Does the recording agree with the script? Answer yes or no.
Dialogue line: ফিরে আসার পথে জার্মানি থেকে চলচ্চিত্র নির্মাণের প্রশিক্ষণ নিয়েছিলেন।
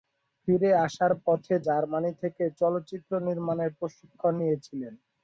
yes